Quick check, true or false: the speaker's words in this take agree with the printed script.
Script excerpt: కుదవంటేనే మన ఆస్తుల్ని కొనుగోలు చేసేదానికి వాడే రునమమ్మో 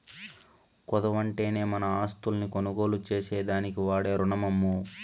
true